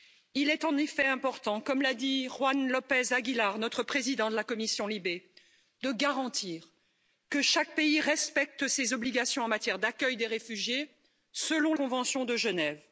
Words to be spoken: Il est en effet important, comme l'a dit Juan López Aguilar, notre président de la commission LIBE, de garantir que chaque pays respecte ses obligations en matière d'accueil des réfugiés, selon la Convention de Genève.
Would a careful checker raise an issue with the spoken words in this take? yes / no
yes